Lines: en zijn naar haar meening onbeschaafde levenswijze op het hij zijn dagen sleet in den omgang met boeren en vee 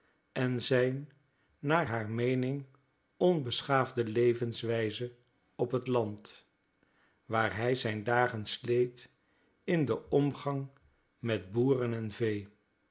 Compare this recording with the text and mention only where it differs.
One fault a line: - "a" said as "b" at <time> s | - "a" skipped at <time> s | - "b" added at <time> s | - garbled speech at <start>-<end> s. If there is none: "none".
- "land waar" added at 5.9 s